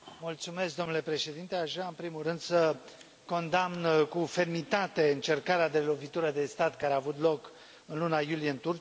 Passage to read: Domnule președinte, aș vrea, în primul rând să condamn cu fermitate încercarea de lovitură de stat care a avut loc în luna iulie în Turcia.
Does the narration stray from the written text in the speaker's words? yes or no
no